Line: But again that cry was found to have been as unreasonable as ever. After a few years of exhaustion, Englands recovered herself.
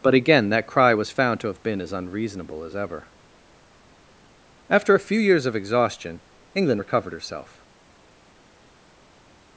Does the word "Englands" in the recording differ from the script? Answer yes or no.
yes